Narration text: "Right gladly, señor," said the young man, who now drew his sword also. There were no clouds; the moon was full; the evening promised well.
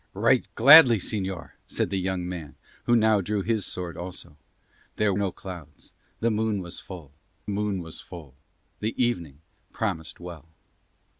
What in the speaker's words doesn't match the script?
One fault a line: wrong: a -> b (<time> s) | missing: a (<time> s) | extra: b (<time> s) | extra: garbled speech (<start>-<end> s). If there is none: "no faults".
missing: were (5.1 s)
extra: moon was full (7.5 s)